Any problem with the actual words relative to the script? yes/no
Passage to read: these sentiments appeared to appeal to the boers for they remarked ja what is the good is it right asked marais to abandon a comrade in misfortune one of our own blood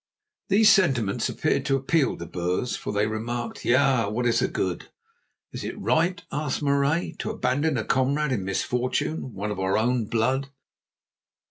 yes